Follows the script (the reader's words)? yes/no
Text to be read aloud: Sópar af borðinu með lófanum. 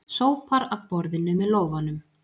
yes